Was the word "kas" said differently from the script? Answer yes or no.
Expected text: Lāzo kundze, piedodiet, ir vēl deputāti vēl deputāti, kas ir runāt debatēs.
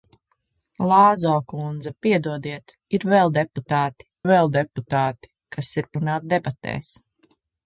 no